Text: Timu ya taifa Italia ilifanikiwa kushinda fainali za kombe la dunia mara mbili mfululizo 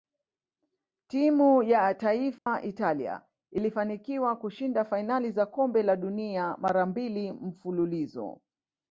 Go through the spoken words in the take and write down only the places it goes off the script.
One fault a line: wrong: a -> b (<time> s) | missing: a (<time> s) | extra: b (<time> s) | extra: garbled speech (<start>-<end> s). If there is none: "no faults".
no faults